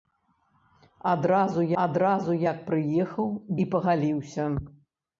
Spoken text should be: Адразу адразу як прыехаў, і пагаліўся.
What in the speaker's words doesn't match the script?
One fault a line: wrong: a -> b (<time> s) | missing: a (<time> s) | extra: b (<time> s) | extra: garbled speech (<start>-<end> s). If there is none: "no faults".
no faults